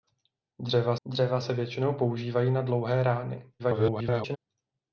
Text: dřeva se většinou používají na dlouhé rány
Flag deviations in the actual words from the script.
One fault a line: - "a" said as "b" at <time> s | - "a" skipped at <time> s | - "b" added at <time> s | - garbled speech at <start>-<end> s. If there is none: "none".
- "dřeva" added at 1.1 s
- garbled speech at 3.6-4.4 s